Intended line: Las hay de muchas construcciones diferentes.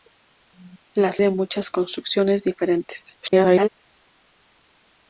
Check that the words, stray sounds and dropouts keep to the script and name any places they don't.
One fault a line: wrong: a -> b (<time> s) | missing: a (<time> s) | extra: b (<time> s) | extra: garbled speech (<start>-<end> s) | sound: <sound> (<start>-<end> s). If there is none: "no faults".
missing: hay (1.2 s)
extra: garbled speech (3.2-3.7 s)